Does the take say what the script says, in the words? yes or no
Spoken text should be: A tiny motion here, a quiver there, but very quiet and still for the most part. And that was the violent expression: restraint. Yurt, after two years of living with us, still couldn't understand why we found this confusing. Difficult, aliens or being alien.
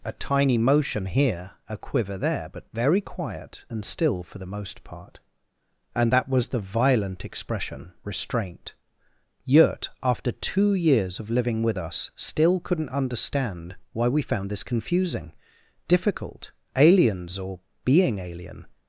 yes